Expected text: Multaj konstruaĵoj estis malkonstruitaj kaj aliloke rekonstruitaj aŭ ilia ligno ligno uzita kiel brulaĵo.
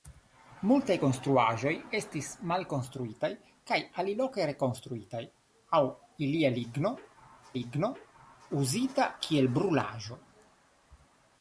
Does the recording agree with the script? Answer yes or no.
yes